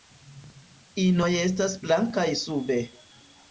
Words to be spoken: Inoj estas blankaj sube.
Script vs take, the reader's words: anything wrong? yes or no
no